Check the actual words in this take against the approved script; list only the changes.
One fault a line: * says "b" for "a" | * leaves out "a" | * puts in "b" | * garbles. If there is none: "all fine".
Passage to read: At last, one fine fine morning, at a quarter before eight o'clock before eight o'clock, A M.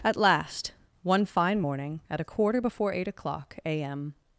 * leaves out "fine"
* leaves out "before eight o'clock"